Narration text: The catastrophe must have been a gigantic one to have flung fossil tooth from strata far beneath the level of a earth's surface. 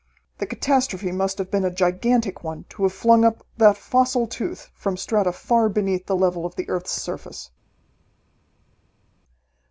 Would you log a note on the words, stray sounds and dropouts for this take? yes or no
yes